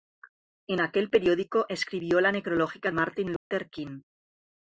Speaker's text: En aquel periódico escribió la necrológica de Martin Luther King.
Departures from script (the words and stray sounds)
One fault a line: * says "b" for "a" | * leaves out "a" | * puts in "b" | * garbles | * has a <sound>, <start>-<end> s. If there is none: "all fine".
* leaves out "de"
* has a dropout, 3.4-3.5 s